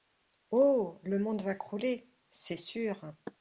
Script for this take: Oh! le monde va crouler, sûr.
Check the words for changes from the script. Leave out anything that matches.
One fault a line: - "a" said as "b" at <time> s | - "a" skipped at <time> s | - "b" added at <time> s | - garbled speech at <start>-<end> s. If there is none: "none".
- "c'est" added at 2.3 s